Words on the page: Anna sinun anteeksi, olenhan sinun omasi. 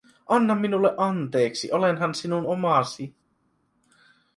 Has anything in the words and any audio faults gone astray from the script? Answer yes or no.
yes